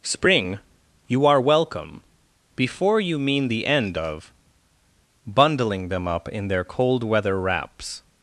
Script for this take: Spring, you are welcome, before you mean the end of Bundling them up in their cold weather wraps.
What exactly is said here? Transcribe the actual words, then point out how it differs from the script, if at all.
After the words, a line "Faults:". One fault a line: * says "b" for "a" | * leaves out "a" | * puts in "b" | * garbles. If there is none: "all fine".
Spring, you are welcome, before you mean the end of Bundling them up in their cold weather wraps.
Faults:
all fine